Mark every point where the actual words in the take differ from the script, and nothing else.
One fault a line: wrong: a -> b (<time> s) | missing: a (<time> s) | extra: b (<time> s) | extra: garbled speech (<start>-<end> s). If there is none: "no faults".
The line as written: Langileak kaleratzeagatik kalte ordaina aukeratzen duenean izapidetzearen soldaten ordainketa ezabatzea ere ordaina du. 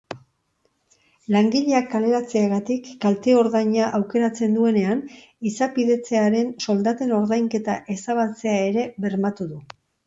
wrong: ordaina -> bermatu (9.1 s)